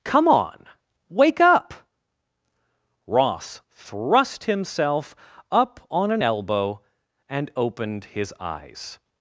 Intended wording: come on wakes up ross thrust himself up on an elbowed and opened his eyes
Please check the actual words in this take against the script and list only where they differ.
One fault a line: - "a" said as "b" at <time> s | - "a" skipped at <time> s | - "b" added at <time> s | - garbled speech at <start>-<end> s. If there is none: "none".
- "wakes" said as "wake" at 1.1 s
- "elbowed" said as "elbow" at 6.2 s